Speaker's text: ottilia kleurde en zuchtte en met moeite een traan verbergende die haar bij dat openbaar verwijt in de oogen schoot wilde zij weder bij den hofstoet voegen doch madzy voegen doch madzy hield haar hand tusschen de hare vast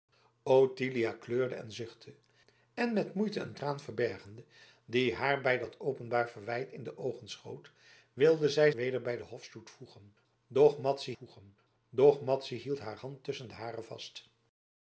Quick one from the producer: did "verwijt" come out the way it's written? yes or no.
yes